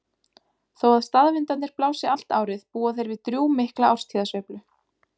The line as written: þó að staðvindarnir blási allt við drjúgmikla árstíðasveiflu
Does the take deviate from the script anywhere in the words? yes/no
yes